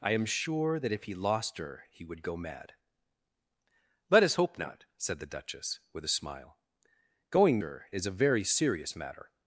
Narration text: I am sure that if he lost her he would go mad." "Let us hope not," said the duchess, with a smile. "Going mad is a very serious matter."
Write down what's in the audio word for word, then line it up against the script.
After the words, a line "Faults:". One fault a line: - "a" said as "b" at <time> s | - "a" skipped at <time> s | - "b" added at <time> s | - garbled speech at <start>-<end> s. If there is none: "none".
I am sure that if he lost her he would go mad." "Let us hope not," said the duchess, with a smile. "Going her is a very serious matter."
Faults:
- "mad" said as "her" at 7.6 s